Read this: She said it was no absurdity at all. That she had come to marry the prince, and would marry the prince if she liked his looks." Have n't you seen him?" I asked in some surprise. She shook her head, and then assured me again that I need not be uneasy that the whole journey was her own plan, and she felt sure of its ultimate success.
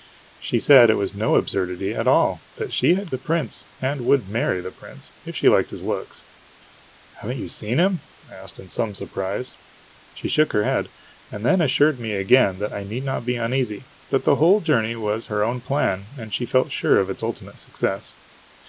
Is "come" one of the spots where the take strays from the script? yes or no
yes